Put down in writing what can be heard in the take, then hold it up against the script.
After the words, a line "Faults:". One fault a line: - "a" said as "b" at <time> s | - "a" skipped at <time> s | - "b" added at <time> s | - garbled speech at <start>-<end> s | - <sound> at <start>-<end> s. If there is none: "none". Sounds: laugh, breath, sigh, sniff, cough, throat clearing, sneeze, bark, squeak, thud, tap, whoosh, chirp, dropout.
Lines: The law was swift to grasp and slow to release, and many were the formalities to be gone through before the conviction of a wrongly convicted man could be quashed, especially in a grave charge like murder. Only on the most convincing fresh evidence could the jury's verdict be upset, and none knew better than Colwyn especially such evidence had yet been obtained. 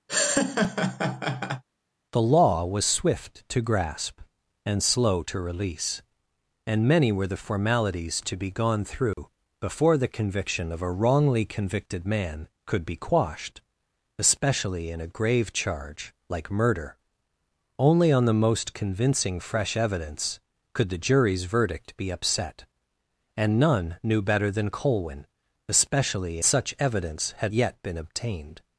The law was swift to grasp and slow to release, and many were the formalities to be gone through before the conviction of a wrongly convicted man could be quashed, especially in a grave charge like murder. Only on the most convincing fresh evidence could the jury's verdict be upset, and none knew better than Colwyn especially such evidence had yet been obtained.
Faults:
- laugh at 0.1-1.6 s
- dropout at 9.1-9.2 s